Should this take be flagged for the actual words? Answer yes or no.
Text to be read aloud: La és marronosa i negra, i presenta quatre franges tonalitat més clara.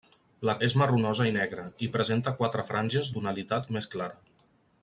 no